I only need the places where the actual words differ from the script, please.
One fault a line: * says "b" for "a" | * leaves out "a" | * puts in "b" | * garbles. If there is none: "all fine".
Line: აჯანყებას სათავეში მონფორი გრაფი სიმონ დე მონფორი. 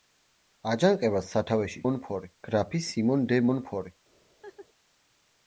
all fine